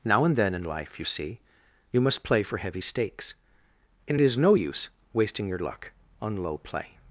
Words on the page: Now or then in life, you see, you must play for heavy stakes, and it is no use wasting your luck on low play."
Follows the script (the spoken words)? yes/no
no